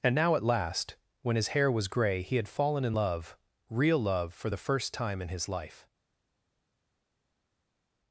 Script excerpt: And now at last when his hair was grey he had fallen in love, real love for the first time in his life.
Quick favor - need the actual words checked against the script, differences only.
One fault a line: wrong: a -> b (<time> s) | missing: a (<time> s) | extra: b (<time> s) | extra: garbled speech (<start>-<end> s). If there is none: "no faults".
no faults